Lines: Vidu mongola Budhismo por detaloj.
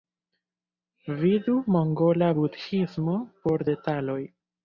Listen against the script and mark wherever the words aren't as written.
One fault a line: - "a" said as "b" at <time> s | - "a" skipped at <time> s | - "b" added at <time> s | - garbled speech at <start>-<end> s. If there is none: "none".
none